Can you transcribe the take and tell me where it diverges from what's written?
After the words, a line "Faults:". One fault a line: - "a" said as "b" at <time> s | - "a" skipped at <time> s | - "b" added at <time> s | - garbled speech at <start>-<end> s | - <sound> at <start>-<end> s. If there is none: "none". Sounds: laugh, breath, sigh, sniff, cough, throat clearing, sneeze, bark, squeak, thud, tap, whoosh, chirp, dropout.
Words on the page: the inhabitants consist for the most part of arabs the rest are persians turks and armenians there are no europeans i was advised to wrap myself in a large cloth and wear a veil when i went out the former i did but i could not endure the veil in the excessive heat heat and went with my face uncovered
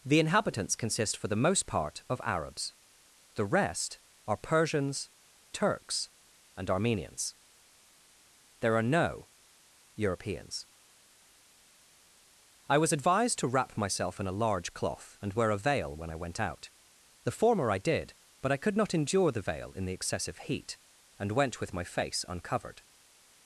the inhabitants consist for the most part of arabs the rest are persians turks and armenians there are no europeans i was advised to wrap myself in a large cloth and wear a veil when i went out the former i did but i could not endure the veil in the excessive heat and went with my face uncovered
Faults:
- "heat" skipped at 20.8 s